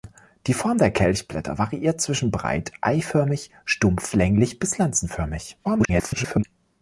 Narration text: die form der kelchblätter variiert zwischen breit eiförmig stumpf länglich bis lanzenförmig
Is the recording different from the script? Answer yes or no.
yes